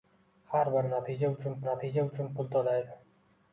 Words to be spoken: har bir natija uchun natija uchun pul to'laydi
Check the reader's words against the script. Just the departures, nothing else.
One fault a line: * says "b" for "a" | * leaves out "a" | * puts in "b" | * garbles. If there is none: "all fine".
all fine